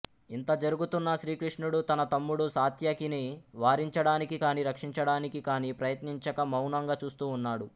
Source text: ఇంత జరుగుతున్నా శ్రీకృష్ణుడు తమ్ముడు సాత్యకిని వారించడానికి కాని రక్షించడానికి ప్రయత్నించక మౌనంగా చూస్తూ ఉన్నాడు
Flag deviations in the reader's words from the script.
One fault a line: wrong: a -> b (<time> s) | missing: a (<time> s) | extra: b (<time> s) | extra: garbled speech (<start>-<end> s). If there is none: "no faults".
extra: తన (1.9 s)
extra: కాని (5.4 s)